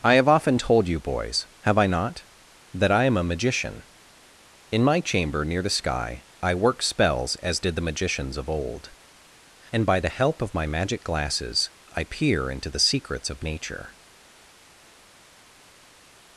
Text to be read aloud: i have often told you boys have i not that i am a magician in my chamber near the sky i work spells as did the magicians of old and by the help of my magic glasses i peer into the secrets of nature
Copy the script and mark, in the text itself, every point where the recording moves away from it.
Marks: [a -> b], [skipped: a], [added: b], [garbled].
i have often told you boys have i not that i am a magician in my chamber near the sky i work spells as did the magicians of old and by the help of my magic glasses i peer into the secrets of nature